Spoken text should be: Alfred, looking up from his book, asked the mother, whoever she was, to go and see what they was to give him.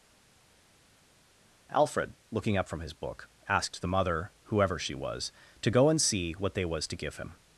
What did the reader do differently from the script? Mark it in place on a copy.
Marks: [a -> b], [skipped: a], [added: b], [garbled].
Alfred, looking up from his book, asked the mother, whoever she was, to go and see what they was to give him.